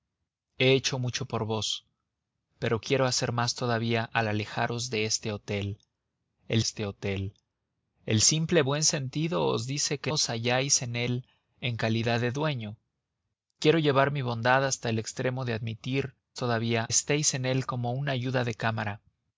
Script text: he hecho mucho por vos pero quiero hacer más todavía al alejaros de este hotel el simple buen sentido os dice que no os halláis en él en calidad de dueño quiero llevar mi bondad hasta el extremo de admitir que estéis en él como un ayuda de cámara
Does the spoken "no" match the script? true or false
false